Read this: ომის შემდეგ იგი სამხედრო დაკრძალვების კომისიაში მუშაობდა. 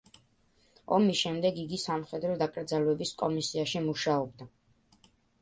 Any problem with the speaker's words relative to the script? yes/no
no